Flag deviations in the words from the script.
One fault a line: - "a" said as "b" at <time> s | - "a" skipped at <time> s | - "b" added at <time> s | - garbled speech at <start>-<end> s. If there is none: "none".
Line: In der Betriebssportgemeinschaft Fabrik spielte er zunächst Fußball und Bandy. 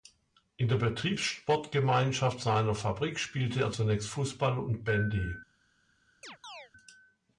- "seiner" added at 2.4 s